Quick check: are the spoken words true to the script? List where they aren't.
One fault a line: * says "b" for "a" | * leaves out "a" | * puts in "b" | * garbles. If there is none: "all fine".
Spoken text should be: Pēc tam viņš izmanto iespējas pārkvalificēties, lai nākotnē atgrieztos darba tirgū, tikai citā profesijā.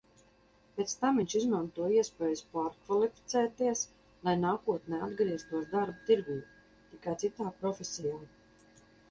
all fine